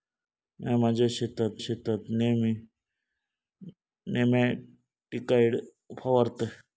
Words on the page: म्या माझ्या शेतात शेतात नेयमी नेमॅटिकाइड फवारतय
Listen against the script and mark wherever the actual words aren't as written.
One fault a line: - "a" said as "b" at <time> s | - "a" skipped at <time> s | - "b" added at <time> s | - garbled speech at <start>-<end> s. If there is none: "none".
none